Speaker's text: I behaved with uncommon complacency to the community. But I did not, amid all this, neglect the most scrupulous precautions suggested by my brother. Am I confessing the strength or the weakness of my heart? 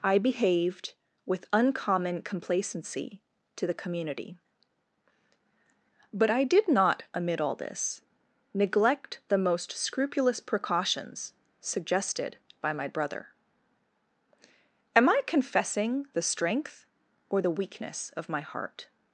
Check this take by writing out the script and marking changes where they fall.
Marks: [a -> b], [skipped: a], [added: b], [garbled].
I behaved with uncommon complacency to the community. But I did not, amid all this, neglect the most scrupulous precautions suggested by my brother. Am I confessing the strength or the weakness of my heart?